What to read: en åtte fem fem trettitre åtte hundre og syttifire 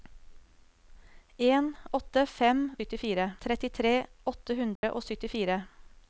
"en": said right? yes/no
yes